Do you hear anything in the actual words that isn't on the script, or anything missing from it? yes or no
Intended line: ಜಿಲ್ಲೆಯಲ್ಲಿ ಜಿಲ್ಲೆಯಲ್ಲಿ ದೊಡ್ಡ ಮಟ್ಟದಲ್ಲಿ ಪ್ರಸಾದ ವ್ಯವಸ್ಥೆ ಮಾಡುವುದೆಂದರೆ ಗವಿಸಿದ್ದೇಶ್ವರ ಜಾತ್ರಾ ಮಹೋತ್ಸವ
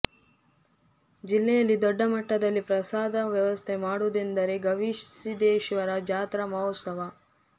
yes